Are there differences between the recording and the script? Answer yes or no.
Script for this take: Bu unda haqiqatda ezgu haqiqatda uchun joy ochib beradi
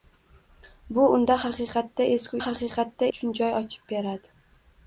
no